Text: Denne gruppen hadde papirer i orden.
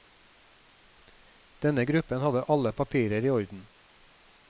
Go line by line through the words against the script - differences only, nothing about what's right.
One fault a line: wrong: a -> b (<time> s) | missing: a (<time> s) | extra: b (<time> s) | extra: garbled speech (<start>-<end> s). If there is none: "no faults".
extra: alle (2.4 s)